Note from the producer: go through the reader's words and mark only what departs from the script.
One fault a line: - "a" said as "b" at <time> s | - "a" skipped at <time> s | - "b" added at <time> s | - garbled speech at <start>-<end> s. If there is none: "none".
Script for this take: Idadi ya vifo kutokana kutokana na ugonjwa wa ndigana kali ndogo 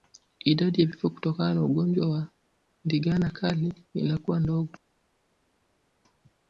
- "kutokana" skipped at 1.5 s
- "inakuwa" added at 3.9 s